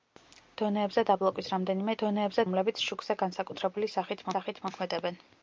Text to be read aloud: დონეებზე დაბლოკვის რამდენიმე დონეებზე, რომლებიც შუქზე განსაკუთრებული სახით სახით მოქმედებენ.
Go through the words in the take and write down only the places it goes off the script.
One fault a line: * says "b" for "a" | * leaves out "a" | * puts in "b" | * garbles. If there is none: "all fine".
all fine